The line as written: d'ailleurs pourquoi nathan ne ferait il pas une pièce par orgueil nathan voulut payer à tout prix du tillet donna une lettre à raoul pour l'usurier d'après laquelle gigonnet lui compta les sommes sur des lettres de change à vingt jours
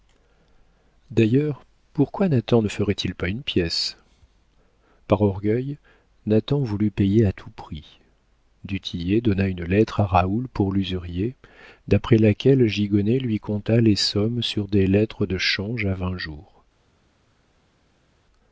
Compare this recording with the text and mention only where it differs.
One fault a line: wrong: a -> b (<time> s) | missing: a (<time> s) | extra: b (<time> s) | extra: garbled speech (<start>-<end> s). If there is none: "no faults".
no faults